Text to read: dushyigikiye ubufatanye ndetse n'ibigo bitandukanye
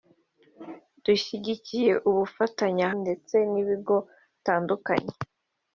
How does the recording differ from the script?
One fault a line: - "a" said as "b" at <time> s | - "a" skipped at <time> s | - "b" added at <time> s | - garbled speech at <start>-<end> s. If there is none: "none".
none